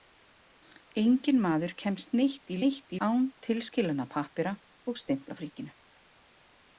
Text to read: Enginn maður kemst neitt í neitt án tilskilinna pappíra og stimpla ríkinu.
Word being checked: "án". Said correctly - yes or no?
yes